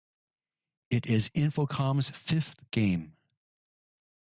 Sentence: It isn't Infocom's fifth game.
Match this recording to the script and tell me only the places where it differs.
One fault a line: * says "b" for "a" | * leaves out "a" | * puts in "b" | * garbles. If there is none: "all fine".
* says "is" for "isn't"